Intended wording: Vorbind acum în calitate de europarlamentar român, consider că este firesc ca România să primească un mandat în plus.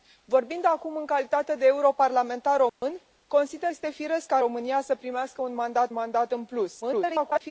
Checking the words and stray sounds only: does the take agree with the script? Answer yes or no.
no